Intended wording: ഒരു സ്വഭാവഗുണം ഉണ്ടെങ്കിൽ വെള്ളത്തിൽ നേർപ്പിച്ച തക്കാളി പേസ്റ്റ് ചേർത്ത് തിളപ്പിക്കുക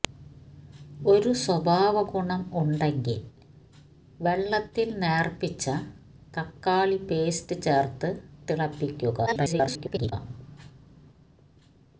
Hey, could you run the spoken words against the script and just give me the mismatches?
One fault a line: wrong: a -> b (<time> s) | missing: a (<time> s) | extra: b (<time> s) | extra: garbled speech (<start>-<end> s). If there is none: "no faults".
extra: garbled speech (9.3-10.1 s)